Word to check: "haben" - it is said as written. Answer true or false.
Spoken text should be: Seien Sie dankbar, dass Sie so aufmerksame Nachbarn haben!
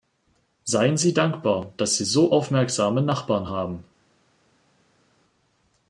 true